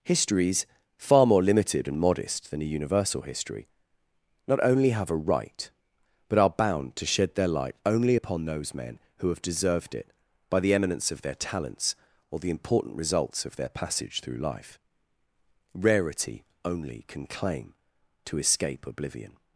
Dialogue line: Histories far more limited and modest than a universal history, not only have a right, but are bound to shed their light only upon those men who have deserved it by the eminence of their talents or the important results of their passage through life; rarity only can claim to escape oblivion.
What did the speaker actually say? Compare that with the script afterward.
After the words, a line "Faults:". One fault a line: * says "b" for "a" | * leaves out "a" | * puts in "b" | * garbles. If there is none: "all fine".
Histories far more limited and modest than a universal history, not only have a right, but are bound to shed their light only upon those men who have deserved it by the eminence of their talents or the important results of their passage through life; rarity only can claim to escape oblivion.
Faults:
all fine